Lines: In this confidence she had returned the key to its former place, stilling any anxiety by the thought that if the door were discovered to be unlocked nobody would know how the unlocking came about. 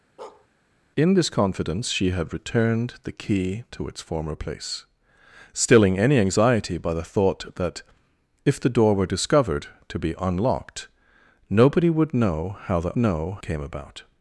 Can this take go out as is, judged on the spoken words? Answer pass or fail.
fail